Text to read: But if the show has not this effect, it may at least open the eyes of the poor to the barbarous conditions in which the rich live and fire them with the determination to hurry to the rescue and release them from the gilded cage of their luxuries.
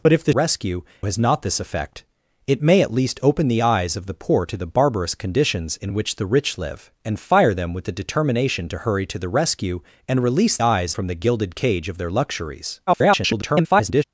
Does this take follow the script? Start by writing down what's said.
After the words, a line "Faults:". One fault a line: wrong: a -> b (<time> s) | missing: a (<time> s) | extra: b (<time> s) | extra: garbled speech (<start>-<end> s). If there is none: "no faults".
But if the rescue has not this effect, it may at least open the eyes of the poor to the barbarous conditions in which the rich live and fire them with the determination to hurry to the rescue and release eyes from the gilded cage of their luxuries. [garbled]
Faults:
wrong: show -> rescue (0.3 s)
wrong: them -> eyes (10.6 s)
extra: garbled speech (12.9-14.0 s)